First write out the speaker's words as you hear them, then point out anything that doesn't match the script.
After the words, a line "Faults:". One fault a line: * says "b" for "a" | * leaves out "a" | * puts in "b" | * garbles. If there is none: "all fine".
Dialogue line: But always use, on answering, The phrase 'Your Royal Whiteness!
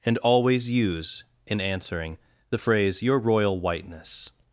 And always use, in answering, The phrase 'Your Royal Whiteness!
Faults:
* says "And" for "But"
* says "in" for "on"